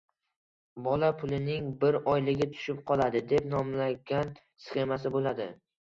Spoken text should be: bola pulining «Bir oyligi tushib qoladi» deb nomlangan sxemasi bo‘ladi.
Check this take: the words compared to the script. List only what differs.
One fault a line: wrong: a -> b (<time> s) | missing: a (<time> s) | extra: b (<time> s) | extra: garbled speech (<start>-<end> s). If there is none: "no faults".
no faults